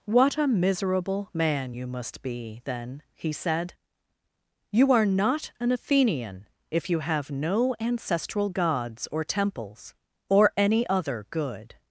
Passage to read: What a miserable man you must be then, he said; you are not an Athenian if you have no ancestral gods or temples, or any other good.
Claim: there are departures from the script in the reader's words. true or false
false